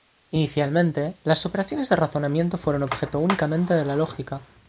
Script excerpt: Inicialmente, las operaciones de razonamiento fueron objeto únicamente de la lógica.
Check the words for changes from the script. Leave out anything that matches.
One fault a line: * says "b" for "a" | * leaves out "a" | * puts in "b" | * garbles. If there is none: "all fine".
all fine